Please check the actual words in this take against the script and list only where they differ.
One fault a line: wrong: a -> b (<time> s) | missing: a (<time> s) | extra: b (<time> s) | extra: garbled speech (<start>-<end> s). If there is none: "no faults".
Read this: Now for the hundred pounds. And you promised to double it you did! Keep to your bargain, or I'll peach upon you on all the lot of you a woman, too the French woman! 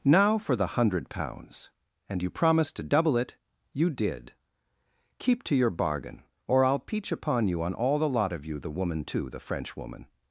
wrong: a -> the (8.6 s)